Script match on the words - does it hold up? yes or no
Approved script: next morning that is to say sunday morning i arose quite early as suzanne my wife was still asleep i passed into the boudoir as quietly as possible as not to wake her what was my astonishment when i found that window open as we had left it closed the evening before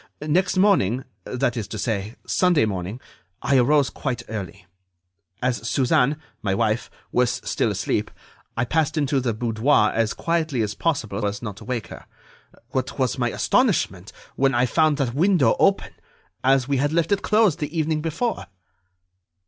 yes